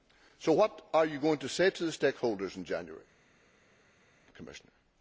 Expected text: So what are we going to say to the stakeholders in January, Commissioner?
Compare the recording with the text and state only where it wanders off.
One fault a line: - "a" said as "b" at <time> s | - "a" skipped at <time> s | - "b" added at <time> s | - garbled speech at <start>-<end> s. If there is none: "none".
- "we" said as "you" at 1.1 s